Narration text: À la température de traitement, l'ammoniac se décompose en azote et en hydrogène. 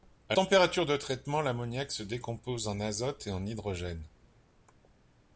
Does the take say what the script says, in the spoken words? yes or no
no